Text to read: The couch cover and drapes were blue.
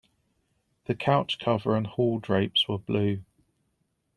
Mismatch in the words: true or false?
true